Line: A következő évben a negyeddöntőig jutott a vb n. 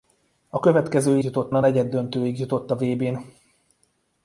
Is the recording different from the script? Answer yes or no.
yes